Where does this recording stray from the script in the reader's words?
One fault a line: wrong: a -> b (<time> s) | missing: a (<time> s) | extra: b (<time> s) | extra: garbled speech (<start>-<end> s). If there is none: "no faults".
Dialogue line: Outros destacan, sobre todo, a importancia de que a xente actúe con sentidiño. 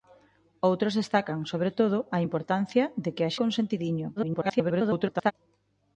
missing: xente actúe (3.3 s)
extra: garbled speech (4.2-5.3 s)